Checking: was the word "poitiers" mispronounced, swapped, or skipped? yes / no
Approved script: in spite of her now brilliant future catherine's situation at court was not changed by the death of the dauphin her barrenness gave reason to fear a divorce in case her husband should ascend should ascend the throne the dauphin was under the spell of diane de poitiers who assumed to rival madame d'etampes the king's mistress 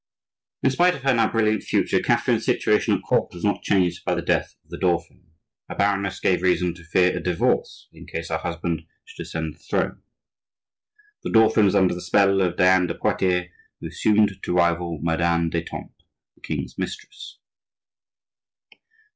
no